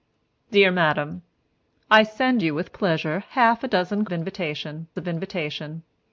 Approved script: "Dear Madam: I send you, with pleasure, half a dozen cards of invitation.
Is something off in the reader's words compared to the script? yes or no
yes